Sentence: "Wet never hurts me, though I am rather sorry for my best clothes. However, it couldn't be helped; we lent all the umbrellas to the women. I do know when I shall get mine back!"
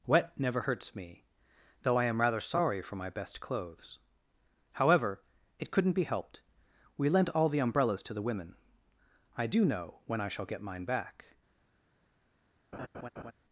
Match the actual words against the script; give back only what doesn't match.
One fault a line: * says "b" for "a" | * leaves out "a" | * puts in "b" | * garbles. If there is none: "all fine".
all fine